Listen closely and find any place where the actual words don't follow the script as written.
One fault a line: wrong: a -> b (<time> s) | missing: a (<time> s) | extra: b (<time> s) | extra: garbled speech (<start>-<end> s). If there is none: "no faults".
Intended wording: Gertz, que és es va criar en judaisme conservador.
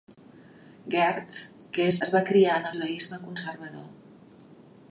no faults